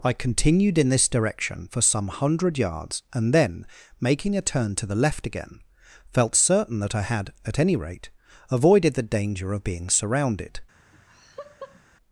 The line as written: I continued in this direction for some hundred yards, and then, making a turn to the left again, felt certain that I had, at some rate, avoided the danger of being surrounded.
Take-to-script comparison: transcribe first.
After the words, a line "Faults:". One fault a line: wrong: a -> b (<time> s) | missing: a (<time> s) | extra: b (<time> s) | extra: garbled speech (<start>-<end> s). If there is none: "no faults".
I continued in this direction for some hundred yards, and then, making a turn to the left again, felt certain that I had, at any rate, avoided the danger of being surrounded.
Faults:
wrong: some -> any (7.6 s)